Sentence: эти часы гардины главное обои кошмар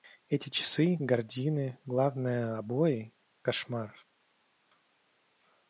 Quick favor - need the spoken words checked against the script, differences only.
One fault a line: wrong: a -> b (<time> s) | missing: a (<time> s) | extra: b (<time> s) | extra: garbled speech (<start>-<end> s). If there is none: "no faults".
no faults